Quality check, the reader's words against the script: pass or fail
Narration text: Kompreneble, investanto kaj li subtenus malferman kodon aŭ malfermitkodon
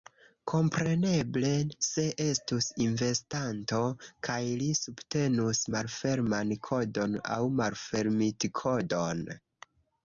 fail